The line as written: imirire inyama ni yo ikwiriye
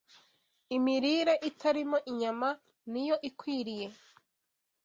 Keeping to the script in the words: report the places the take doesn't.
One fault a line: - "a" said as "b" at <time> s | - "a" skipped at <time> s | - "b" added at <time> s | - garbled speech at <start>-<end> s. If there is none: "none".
- "itarimo" added at 1.5 s